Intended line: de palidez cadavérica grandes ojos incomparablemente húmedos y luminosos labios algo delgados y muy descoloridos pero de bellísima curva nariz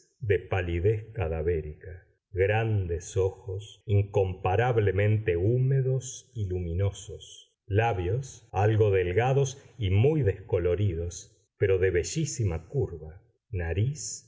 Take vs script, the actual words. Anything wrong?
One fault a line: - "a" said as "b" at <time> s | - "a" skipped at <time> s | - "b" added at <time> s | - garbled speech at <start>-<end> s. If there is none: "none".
none